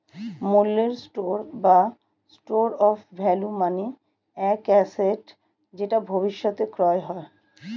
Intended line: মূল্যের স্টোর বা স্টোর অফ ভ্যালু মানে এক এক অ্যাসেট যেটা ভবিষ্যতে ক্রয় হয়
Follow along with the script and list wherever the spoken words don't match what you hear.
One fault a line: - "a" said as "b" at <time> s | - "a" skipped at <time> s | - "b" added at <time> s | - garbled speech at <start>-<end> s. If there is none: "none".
- "এক" skipped at 4.6 s